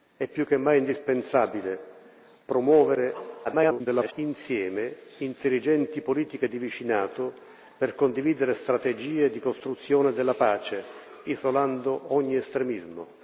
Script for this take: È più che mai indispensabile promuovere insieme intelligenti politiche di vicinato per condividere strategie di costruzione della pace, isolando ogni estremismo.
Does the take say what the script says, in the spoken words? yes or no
no